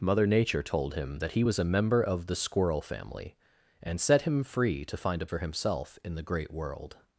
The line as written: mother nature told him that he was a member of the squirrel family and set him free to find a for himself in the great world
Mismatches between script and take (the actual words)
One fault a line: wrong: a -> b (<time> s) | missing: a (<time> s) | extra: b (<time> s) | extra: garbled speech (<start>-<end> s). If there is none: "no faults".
no faults